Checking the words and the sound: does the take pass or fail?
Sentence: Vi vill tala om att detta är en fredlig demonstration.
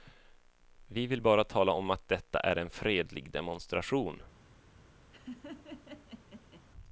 fail